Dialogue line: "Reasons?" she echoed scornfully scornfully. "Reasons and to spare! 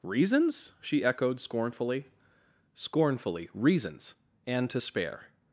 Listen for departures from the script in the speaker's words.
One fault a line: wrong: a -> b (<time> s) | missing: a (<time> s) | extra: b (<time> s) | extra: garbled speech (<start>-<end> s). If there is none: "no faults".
no faults